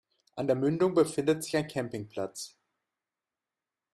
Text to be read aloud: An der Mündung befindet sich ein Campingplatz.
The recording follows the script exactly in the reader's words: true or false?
true